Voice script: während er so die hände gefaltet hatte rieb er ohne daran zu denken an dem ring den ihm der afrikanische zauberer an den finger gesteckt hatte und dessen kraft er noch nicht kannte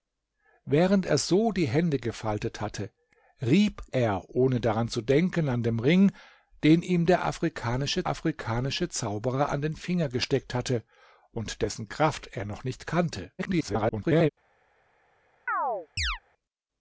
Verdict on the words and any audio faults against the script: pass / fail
fail